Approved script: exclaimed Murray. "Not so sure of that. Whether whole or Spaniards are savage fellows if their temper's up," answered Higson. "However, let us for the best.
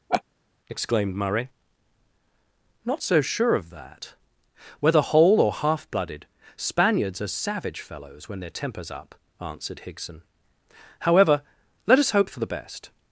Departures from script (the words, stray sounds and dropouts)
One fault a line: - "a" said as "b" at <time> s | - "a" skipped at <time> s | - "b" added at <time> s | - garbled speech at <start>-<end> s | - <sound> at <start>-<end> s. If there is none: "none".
- laugh at 0.1-0.2 s
- "half blooded" added at 5.5 s
- "if" said as "when" at 8.3 s
- "hope" added at 12.1 s